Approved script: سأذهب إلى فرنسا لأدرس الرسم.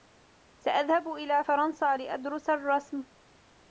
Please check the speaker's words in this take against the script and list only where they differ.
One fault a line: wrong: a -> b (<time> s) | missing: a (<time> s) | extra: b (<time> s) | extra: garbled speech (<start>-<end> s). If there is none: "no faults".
no faults